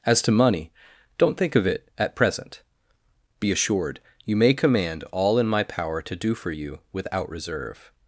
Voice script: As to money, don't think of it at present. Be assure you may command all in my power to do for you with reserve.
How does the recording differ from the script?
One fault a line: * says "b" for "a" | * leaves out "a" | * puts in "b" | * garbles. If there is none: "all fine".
* says "assured" for "assure"
* says "without" for "with"